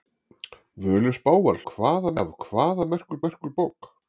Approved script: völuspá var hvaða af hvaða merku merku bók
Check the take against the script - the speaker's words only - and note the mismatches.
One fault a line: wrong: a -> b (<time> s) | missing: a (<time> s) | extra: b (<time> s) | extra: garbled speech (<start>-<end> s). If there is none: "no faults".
no faults